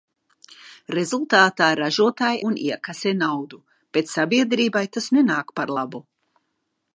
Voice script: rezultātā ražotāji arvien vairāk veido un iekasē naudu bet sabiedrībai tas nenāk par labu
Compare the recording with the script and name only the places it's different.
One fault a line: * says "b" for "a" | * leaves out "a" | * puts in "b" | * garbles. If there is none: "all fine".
* leaves out "arvien vairāk veido"